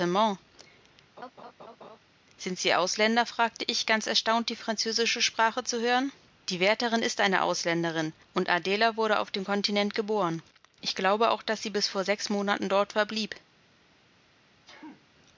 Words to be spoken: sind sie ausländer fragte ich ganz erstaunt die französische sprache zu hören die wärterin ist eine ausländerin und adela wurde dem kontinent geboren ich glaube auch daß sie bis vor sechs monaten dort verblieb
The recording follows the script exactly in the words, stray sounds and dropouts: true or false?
false